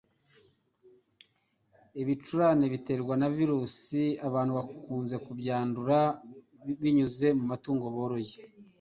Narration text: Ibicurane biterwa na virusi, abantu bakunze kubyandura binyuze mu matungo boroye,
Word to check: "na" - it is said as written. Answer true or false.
true